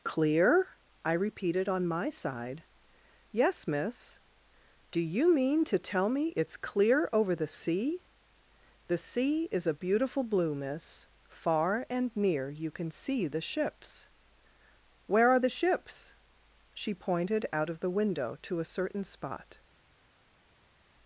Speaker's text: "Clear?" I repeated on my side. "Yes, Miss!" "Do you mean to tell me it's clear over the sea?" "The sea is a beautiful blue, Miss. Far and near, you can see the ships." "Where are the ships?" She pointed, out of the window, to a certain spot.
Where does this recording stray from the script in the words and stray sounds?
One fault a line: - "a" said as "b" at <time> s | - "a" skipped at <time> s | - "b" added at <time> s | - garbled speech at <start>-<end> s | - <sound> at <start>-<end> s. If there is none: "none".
none